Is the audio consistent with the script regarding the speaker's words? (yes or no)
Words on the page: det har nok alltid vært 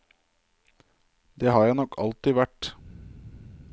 no